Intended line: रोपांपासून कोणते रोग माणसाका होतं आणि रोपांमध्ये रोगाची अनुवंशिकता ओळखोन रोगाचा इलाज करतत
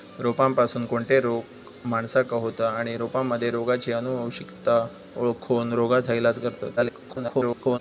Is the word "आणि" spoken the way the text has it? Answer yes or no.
yes